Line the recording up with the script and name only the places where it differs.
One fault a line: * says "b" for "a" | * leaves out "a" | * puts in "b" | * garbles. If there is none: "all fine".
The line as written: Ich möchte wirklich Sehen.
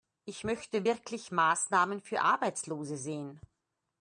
* puts in "Maßnahmen für Arbeitslose"